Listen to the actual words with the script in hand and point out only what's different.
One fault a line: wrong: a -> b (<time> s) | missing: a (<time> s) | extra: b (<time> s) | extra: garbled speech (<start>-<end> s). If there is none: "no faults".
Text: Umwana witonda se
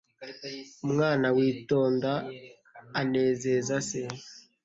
extra: anezeza (3.0 s)